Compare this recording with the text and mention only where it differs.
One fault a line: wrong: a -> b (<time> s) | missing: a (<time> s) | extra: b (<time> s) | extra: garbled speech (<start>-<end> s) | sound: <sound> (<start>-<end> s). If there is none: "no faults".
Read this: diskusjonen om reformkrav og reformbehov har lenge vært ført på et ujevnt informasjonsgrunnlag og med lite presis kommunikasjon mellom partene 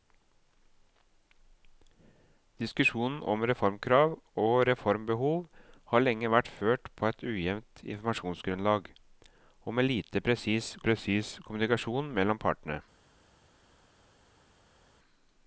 extra: presis (10.8 s)